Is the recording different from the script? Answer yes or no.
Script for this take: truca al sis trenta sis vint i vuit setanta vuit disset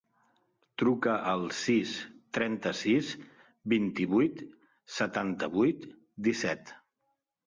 no